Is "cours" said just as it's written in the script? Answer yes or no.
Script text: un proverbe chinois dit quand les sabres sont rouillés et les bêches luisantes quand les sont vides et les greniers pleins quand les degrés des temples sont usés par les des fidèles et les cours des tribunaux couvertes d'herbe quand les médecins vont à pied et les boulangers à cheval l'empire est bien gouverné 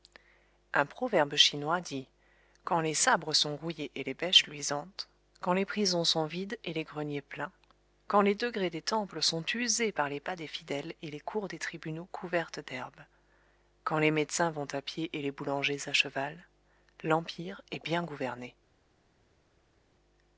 yes